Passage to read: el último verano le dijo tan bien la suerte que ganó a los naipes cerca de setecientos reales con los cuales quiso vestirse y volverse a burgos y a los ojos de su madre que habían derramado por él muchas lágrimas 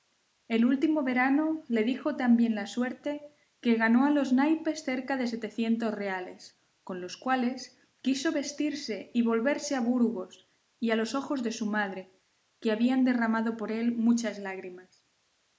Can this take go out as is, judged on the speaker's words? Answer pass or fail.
pass